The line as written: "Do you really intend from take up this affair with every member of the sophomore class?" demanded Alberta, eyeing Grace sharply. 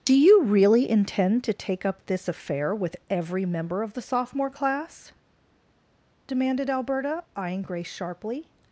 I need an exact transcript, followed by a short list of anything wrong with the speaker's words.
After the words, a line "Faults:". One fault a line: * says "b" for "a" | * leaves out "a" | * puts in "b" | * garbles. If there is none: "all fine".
"Do you really intend to take up this affair with every member of the sophomore class?" demanded Alberta, eyeing Grace sharply.
Faults:
* says "to" for "from"